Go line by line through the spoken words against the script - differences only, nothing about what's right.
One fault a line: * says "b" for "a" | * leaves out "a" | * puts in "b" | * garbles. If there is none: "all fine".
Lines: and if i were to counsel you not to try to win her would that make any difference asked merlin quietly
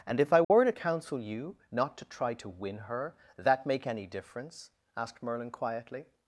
* leaves out "would"